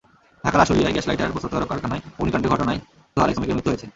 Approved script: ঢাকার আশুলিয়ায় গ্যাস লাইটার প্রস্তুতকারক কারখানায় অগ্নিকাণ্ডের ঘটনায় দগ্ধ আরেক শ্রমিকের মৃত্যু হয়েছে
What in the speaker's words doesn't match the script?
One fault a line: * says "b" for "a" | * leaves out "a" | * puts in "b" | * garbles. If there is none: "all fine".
* leaves out "দগ্ধ"